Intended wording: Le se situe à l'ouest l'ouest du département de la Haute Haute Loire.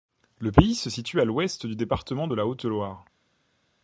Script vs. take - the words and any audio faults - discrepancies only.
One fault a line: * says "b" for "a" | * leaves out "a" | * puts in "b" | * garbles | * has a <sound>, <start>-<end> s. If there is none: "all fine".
* puts in "pays"
* leaves out "l'ouest"
* leaves out "Haute"